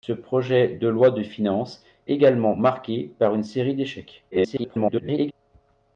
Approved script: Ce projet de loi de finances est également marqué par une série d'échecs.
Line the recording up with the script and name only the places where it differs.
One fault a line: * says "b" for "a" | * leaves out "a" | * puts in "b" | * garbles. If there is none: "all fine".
* leaves out "est"
* garbles